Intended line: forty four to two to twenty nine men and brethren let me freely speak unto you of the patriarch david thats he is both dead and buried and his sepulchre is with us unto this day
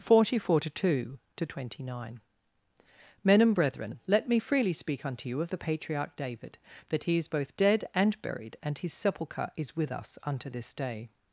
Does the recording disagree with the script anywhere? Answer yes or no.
yes